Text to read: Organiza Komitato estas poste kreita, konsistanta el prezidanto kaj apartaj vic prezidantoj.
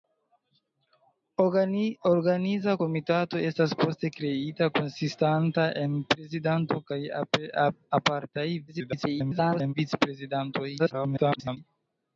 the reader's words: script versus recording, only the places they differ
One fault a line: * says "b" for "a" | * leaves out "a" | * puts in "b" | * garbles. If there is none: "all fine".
* garbles
* garbles